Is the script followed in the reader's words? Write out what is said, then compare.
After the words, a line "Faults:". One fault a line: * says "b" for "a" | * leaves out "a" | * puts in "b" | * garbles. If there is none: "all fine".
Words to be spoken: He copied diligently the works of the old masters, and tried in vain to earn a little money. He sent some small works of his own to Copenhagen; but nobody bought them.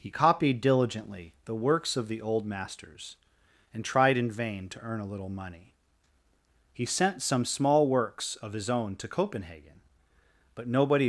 He copied diligently the works of the old masters, and tried in vain to earn a little money. He sent some small works of his own to Copenhagen; but nobody.
Faults:
* leaves out "bought them"